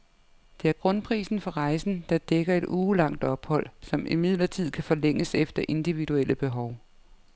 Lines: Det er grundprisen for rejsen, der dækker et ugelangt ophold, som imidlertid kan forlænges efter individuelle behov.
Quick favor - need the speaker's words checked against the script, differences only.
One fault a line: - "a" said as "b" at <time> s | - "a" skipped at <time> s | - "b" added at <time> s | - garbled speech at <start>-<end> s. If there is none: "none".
none